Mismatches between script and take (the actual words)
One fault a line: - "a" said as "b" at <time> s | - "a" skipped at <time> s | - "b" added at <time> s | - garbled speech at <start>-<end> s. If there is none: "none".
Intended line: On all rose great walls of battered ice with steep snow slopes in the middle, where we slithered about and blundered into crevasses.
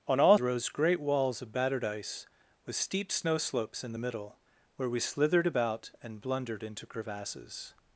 none